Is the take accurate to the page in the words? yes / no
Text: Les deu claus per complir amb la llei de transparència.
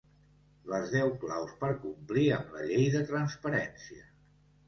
yes